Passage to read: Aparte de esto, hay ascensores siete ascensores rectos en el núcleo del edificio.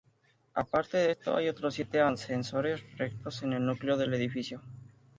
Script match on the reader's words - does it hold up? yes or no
no